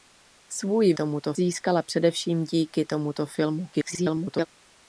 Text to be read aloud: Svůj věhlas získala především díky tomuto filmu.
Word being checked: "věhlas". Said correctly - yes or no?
no